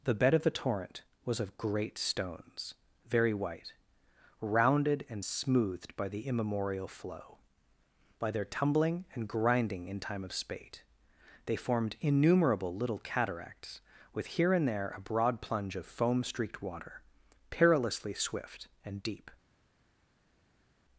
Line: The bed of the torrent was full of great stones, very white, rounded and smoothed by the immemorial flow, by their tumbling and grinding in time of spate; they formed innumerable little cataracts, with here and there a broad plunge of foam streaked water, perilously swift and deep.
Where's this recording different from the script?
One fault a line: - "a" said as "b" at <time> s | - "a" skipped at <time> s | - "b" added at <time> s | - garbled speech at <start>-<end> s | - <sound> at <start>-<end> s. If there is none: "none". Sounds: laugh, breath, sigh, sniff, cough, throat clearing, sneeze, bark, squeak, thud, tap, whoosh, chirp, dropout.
- "full" skipped at 1.4 s